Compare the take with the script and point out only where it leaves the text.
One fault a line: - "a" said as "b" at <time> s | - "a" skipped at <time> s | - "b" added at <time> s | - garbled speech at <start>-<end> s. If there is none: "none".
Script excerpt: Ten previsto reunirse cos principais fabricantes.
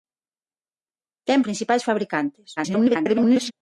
- "previsto reunirse cos" skipped at 1.4 s
- garbled speech at 2.6-3.5 s